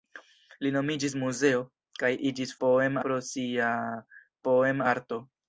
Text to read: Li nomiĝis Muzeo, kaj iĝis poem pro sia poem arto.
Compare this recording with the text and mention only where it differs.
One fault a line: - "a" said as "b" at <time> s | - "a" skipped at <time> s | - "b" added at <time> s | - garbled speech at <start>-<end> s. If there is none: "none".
none